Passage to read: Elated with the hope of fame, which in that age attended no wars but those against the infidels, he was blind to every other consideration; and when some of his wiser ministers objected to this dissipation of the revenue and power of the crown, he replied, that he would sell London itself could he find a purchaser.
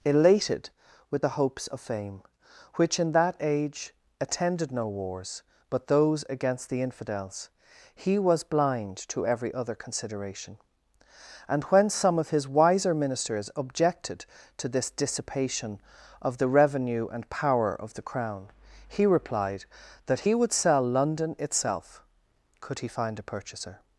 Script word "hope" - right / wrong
wrong